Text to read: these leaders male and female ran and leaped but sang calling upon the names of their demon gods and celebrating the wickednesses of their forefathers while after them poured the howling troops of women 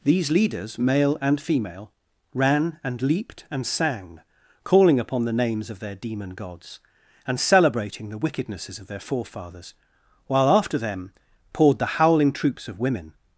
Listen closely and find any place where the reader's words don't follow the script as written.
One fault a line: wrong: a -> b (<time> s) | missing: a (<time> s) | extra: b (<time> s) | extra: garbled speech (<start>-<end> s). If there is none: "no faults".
wrong: but -> and (3.5 s)